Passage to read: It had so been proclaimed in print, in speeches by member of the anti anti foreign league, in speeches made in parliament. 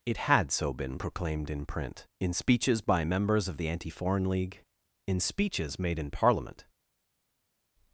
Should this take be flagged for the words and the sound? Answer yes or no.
yes